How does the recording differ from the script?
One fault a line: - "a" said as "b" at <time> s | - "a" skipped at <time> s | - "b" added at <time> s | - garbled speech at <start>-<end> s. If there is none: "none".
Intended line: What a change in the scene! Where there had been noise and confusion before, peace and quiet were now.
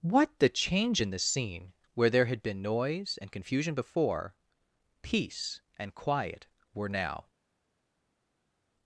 - "a" said as "the" at 0.4 s